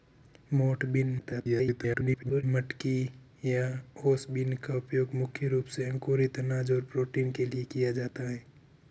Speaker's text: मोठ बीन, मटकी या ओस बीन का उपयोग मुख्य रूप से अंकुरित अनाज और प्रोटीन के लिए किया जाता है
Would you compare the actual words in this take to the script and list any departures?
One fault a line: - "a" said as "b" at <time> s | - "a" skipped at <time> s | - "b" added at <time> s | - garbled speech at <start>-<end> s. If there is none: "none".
- garbled speech at 1.2-2.4 s